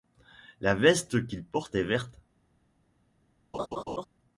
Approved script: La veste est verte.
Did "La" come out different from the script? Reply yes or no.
no